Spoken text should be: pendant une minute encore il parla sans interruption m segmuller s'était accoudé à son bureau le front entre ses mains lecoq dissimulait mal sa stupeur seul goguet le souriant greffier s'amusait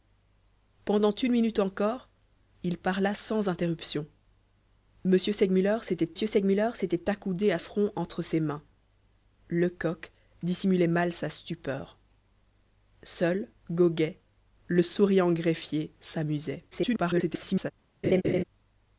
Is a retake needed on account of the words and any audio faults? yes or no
yes